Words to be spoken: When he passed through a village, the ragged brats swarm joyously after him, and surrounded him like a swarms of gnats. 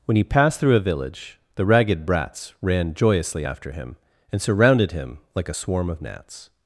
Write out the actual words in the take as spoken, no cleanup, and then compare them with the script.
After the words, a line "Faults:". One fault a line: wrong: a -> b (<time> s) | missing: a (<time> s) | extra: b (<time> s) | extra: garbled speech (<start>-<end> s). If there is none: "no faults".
When he passed through a village, the ragged brats ran joyously after him, and surrounded him like a swarm of gnats.
Faults:
wrong: swarm -> ran (2.6 s)
wrong: swarms -> swarm (5.5 s)